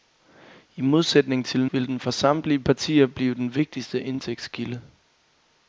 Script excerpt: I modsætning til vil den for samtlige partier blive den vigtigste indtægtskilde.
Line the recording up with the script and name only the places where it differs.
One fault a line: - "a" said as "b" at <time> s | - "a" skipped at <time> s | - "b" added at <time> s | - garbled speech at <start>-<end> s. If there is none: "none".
none